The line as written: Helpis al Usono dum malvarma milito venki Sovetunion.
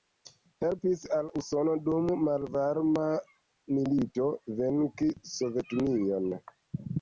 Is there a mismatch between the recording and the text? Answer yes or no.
no